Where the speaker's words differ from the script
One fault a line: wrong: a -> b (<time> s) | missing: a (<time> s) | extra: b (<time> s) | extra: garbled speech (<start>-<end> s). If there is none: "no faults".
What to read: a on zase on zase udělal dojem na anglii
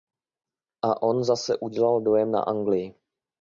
missing: on zase (1.6 s)